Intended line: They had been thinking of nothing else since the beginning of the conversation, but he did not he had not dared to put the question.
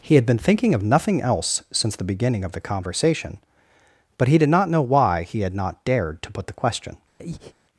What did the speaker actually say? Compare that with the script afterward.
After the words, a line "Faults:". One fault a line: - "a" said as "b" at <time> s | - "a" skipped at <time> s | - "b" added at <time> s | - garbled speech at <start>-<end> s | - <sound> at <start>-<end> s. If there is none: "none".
He had been thinking of nothing else since the beginning of the conversation, but he did not know why he had not dared to put the question.
Faults:
- "They" said as "He" at 0.0 s
- "know why" added at 4.7 s
- breath at 7.2-7.5 s